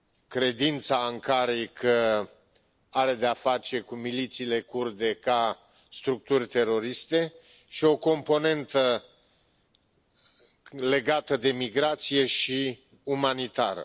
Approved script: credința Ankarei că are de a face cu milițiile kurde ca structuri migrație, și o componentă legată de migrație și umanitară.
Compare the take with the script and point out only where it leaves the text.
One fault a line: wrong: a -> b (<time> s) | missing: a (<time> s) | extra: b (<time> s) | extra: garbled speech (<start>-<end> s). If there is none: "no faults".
wrong: migrație -> teroriste (6.5 s)